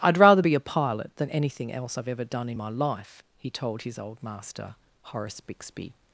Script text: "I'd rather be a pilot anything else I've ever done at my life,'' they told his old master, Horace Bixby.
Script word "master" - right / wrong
right